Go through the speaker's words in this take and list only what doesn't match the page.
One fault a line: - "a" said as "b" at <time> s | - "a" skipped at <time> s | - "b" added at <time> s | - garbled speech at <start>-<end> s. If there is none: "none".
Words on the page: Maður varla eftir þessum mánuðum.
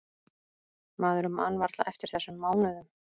- "man" added at 1.4 s